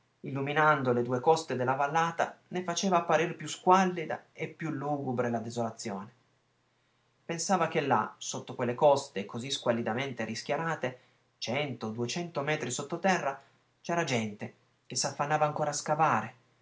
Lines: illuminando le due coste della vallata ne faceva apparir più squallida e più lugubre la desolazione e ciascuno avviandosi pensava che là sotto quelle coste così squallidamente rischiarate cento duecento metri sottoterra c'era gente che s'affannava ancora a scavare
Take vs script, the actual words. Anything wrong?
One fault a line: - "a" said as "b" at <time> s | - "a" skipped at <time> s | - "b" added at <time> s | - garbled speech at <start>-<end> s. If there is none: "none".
- "e ciascuno avviandosi" skipped at 6.1 s